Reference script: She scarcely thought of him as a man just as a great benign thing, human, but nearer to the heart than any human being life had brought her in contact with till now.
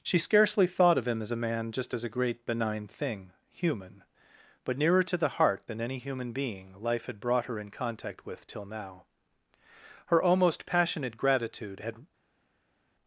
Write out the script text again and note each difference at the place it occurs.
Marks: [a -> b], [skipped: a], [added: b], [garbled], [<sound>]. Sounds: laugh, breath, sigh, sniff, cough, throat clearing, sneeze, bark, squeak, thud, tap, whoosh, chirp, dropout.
She scarcely thought of him as a man just as a great benign thing, human, but nearer to the heart than any human being life had brought her in contact with till now. [added: Her almost passionate gratitude had]